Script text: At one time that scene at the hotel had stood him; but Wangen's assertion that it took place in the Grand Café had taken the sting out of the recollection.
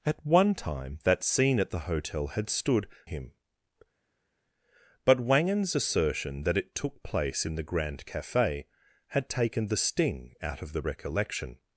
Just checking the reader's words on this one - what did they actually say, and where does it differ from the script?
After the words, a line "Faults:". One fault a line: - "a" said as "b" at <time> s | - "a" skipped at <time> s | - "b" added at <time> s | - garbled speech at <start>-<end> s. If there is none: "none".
At one time that scene at the hotel had stood him; but Wangen's assertion that it took place in the Grand Café had taken the sting out of the recollection.
Faults:
none